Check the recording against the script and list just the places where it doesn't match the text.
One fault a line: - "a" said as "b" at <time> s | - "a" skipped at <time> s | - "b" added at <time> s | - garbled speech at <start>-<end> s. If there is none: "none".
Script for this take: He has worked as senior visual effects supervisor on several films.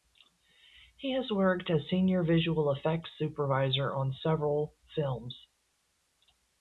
none